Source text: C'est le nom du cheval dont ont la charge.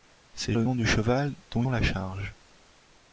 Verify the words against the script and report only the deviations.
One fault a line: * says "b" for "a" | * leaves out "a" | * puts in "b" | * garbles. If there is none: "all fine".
all fine